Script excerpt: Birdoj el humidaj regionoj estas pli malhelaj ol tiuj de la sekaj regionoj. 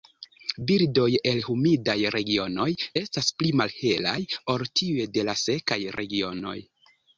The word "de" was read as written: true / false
true